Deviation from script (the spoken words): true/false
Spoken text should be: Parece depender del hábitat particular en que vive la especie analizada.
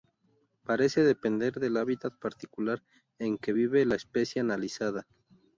false